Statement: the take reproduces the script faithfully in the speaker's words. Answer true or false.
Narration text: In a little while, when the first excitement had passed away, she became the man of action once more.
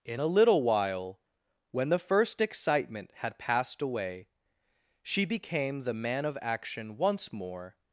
true